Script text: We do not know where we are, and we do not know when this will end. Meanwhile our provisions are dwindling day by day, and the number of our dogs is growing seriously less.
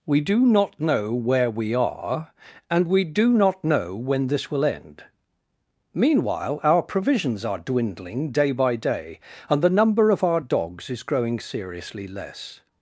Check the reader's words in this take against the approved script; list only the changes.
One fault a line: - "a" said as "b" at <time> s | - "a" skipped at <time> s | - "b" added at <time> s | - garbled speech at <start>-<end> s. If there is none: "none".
none